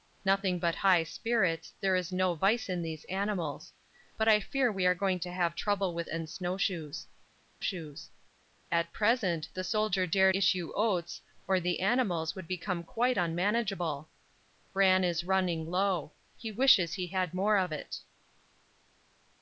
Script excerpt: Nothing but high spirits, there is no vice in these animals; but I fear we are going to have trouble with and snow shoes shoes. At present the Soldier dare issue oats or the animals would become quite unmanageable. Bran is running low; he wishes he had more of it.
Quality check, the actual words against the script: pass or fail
pass